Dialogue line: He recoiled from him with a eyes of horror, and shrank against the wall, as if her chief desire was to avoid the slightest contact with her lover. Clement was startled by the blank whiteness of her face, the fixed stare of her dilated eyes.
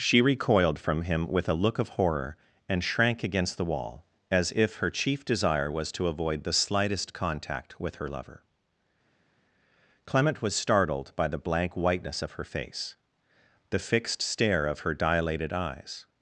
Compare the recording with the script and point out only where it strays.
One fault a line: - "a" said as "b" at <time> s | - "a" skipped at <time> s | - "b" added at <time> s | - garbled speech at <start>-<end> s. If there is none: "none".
- "He" said as "She" at 0.0 s
- "eyes" said as "look" at 1.6 s